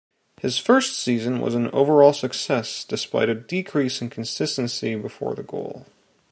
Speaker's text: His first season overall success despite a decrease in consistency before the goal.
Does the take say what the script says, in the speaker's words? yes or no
no